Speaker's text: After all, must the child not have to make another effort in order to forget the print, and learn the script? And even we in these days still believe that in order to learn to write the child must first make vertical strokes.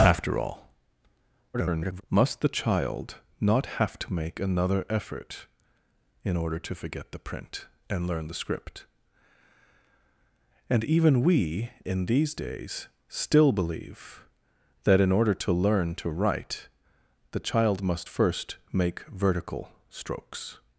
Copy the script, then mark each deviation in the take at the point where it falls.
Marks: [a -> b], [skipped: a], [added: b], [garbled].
After all, [garbled] must the child not have to make another effort in order to forget the print, and learn the script? And even we in these days still believe that in order to learn to write the child must first make vertical strokes.